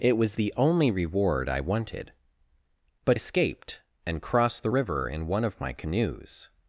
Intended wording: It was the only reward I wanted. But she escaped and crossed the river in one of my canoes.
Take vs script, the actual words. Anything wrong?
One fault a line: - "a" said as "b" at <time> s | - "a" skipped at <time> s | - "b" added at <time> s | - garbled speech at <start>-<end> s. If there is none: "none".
- "she" skipped at 3.2 s